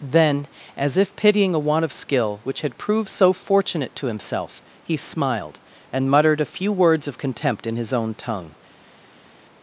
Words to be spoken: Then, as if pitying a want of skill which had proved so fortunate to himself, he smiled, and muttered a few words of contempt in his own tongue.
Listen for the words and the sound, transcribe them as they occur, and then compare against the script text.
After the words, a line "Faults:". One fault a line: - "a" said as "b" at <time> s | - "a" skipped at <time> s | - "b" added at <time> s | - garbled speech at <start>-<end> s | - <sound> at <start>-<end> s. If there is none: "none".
Then, as if pitying a want of skill which had proved so fortunate to himself, he smiled, and muttered a few words of contempt in his own tongue.
Faults:
none